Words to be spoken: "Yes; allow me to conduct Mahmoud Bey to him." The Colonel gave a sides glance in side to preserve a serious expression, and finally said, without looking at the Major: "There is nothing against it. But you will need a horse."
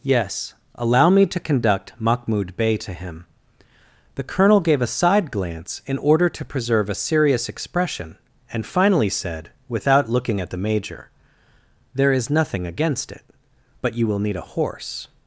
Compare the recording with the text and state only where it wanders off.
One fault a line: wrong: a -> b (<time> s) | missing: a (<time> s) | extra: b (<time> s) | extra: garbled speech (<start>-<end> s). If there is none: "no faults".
wrong: sides -> side (4.9 s)
wrong: side -> order (6.0 s)